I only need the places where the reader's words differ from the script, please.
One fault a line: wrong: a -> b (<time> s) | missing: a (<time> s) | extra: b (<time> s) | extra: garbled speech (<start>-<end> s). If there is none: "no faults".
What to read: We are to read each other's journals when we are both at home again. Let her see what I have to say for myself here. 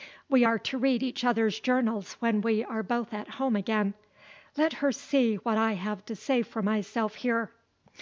no faults